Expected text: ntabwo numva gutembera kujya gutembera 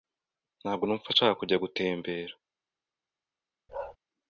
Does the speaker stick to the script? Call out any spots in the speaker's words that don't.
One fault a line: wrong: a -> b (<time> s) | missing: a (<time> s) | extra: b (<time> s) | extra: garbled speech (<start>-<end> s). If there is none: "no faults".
wrong: gutembera -> nshaka (1.1 s)